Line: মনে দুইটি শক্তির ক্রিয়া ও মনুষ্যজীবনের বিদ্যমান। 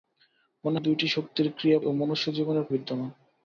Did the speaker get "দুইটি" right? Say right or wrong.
right